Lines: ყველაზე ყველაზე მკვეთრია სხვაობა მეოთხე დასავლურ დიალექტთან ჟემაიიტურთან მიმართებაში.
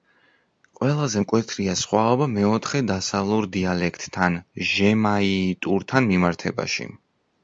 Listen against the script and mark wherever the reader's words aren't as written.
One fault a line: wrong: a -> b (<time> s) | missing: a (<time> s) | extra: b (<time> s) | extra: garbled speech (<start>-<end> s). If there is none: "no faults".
missing: ყველაზე (1.2 s)